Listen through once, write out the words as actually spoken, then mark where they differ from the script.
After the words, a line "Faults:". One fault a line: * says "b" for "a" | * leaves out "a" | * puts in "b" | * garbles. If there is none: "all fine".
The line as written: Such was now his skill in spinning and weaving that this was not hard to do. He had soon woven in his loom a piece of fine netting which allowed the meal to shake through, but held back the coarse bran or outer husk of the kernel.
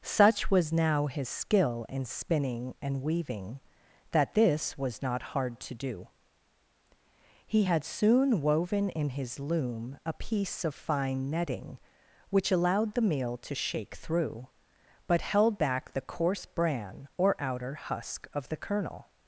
Such was now his skill in spinning and weaving that this was not hard to do. He had soon woven in his loom a piece of fine netting which allowed the meal to shake through, but held back the coarse bran or outer husk of the kernel.
Faults:
all fine